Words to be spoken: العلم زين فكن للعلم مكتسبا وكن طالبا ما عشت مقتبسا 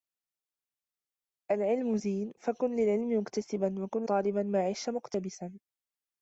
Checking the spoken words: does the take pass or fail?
pass